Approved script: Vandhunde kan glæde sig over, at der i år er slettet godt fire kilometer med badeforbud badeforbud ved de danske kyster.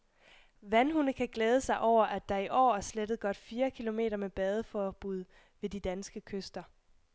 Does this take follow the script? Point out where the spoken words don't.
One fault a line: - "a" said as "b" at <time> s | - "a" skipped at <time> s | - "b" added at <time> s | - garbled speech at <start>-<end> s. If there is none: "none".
- "badeforbud" skipped at 5.2 s